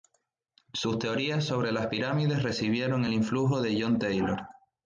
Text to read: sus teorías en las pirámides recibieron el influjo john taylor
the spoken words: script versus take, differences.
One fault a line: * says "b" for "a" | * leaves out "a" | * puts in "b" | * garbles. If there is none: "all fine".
* says "sobre" for "en"
* puts in "de"